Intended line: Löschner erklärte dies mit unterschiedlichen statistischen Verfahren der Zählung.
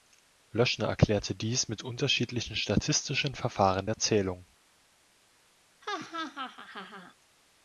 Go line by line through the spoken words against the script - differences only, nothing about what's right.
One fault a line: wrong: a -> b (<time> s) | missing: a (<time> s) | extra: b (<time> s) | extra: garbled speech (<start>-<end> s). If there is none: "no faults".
no faults